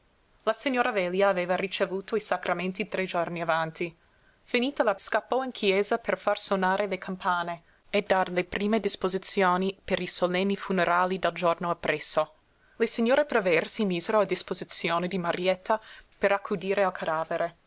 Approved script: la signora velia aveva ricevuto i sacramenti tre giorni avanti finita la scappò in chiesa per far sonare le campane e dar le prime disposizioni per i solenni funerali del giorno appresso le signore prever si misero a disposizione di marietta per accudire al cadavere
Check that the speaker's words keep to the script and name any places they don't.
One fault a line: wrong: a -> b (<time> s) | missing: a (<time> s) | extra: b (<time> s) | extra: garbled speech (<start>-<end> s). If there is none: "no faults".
no faults